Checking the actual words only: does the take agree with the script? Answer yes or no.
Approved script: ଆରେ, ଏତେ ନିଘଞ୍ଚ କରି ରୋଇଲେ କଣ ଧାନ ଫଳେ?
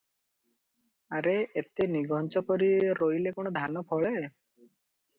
yes